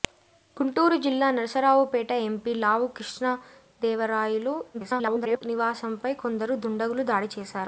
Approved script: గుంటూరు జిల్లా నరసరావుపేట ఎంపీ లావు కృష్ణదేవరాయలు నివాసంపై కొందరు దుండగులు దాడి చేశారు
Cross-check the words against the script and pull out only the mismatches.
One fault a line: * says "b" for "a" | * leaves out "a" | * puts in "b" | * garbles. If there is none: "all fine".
* garbles